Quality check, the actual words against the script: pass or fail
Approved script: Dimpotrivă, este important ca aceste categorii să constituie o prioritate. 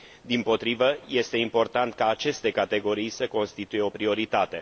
pass